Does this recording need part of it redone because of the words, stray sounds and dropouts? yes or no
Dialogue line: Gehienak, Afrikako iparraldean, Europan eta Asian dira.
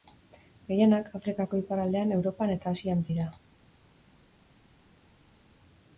no